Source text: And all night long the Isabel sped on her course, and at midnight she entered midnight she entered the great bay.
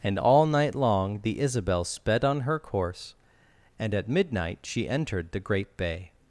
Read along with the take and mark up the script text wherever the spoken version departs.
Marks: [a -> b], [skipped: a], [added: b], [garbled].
And all night long the Isabel sped on her course, and at midnight she entered [skipped: midnight she entered] the great bay.